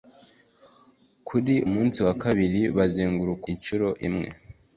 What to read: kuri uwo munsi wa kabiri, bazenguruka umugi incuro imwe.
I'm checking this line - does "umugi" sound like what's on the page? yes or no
no